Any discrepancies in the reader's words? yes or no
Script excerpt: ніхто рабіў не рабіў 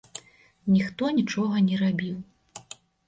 yes